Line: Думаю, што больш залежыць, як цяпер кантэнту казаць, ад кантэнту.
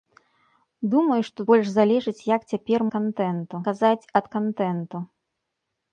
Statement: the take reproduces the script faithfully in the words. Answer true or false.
true